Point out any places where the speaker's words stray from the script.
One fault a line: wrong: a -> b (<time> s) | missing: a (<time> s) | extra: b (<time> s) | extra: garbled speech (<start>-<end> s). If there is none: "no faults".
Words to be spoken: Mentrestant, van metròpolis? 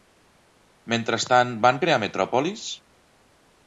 extra: crear (1.8 s)